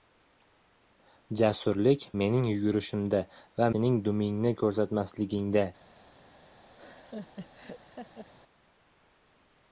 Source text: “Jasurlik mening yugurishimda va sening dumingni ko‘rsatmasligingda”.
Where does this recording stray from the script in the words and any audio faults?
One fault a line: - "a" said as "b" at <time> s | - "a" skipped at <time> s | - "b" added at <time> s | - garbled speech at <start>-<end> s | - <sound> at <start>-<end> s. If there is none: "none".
- laugh at 6.7-8.3 s